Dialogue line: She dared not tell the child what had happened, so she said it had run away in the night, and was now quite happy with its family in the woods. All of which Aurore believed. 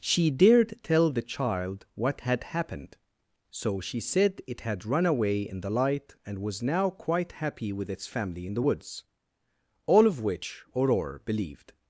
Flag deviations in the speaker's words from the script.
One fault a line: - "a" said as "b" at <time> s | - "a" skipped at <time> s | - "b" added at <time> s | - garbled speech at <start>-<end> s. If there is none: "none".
- "not" skipped at 0.8 s
- "night" said as "light" at 5.7 s